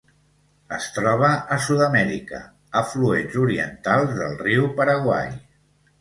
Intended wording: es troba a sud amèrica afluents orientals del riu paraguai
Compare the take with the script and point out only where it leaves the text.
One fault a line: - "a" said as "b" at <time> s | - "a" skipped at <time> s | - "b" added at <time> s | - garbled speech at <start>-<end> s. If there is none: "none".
none